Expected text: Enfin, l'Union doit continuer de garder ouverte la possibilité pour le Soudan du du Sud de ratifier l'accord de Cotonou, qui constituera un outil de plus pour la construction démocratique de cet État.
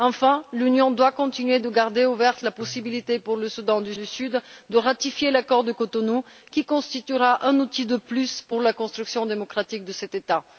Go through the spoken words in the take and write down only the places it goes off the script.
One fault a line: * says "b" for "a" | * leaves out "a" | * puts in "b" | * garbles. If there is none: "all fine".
all fine